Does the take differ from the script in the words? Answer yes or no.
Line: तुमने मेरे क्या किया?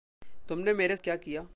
no